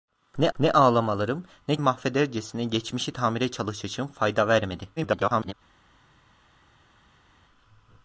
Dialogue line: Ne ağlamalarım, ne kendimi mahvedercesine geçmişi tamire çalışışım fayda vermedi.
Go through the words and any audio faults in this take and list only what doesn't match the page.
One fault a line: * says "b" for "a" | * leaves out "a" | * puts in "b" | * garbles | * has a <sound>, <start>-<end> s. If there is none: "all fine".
* puts in "ne"
* leaves out "kendimi"
* garbles